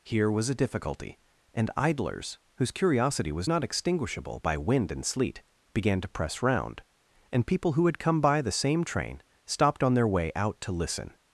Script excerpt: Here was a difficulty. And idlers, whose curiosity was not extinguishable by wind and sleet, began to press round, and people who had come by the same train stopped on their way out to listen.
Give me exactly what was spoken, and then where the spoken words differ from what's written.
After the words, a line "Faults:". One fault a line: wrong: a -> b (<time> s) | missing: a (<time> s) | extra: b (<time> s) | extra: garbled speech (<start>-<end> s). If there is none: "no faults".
Here was a difficulty. And idlers, whose curiosity was not extinguishable by wind and sleet, began to press round, and people who had come by the same train stopped on their way out to listen.
Faults:
no faults